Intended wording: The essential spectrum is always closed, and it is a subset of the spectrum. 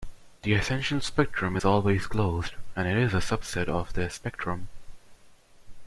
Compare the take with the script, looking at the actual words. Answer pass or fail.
pass